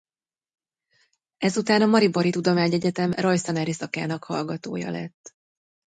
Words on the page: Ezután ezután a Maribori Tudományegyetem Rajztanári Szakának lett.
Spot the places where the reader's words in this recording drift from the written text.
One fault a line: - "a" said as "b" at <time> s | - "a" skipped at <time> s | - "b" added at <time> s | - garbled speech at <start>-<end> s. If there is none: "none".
- "ezután" skipped at 1.8 s
- "hallgatója" added at 4.2 s